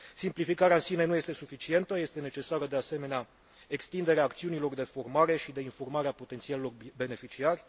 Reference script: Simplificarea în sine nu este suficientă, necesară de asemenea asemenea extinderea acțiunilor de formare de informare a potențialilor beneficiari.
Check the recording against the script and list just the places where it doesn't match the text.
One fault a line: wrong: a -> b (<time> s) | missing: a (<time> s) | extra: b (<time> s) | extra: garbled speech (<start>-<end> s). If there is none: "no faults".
extra: este (2.0 s)
missing: asemenea (3.3 s)
extra: și (5.3 s)